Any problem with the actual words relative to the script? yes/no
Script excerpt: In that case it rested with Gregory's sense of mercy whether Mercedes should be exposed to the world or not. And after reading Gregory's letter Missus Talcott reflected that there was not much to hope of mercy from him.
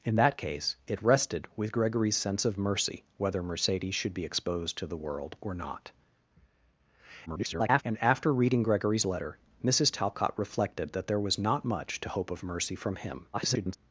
yes